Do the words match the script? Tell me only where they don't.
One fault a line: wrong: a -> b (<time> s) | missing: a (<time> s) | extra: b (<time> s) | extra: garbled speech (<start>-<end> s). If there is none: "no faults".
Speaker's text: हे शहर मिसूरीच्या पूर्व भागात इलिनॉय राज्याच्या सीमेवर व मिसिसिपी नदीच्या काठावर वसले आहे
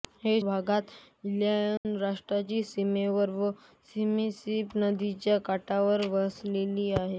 missing: शहर मिसूरीच्या पूर्व (0.4 s)